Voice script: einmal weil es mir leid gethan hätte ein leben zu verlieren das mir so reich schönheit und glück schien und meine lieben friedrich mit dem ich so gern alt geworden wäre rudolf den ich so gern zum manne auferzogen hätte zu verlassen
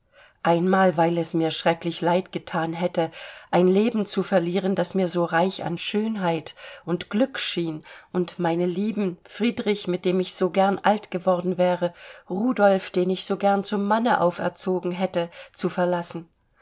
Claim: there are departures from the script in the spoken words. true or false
true